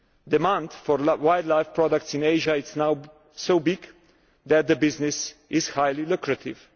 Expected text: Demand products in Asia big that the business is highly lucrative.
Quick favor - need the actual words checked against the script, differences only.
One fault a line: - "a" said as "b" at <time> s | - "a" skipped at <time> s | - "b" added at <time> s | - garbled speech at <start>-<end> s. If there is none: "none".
- "for wildlife" added at 0.7 s
- "is now so" added at 2.5 s